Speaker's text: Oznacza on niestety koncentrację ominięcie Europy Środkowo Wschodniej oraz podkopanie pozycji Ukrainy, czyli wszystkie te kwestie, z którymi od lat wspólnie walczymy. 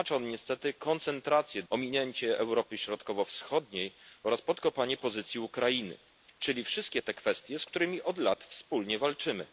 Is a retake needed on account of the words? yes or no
no